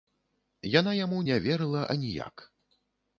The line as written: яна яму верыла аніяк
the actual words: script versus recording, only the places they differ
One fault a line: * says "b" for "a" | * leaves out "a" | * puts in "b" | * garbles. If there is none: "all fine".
* puts in "не"